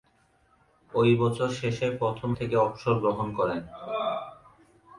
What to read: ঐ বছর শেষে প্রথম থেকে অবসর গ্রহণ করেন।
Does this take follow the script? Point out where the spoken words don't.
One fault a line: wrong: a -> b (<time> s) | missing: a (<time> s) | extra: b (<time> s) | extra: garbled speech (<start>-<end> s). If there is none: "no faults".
no faults